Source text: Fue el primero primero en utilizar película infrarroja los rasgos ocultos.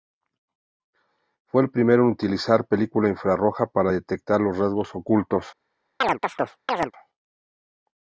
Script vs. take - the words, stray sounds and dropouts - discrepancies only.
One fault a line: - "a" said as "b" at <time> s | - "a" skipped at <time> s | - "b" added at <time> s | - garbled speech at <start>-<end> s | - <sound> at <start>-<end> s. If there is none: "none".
- "primero" skipped at 2.0 s
- "para detectar" added at 3.7 s
- chirp at 6.0-6.9 s